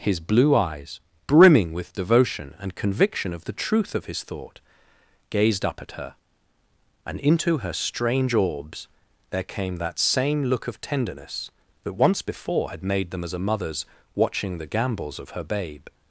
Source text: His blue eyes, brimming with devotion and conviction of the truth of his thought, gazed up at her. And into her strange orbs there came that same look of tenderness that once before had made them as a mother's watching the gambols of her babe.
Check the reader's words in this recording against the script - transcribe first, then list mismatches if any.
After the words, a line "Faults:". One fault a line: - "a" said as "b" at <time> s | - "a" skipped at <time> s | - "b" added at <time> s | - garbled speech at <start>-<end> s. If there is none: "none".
His blue eyes, brimming with devotion and conviction of the truth of his thought, gazed up at her. And into her strange orbs there came that same look of tenderness that once before had made them as a mother's watching the gambols of her babe.
Faults:
none